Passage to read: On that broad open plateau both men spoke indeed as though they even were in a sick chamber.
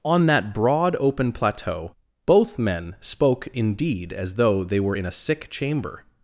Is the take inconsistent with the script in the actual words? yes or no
yes